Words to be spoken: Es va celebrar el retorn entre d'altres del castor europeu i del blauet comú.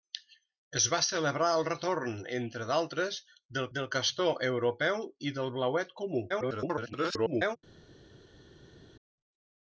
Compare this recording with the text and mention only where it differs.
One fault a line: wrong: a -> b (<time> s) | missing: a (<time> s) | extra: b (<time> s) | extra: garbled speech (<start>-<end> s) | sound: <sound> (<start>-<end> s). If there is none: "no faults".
extra: del (3.8 s)
extra: garbled speech (6.3-7.6 s)